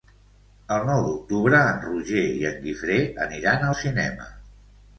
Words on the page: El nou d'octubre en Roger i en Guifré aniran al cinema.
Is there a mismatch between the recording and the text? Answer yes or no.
no